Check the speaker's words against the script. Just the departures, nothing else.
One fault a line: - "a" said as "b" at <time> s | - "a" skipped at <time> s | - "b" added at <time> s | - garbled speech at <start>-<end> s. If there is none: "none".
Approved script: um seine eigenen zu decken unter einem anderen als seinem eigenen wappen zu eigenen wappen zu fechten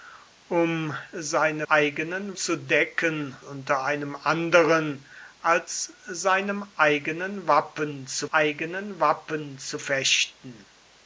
none